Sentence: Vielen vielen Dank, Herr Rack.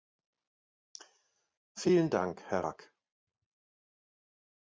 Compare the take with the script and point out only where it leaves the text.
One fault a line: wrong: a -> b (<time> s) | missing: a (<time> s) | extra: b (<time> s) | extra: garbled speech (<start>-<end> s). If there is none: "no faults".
missing: vielen (2.1 s)